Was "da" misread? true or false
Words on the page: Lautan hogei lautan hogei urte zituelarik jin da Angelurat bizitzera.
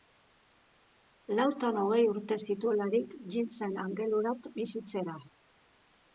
true